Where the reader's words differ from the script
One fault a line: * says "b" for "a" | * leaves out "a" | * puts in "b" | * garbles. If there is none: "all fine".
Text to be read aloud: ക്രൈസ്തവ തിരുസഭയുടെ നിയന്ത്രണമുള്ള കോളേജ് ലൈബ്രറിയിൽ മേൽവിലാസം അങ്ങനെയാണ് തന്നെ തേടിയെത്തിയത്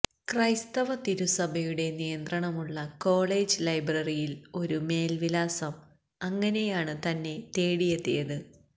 * puts in "ഒരു"